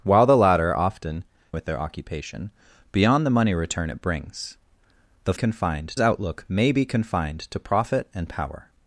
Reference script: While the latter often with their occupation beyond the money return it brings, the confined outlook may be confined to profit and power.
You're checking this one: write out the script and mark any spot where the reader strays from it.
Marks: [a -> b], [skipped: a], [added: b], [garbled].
While the latter often with their occupation beyond the money return it brings, the confined outlook may be confined to profit and power.